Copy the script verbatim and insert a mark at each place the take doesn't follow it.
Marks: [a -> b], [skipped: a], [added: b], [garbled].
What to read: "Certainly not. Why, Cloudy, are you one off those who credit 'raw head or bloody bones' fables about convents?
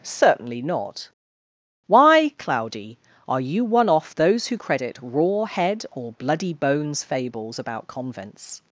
"Certainly not. Why, Cloudy, are you one off those who credit 'raw head or bloody bones' fables about convents?